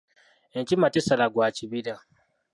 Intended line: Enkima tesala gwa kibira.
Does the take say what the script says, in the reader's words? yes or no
yes